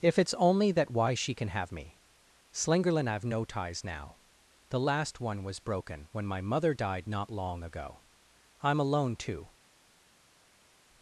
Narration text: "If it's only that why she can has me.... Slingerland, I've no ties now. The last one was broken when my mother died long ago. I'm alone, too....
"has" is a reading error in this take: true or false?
true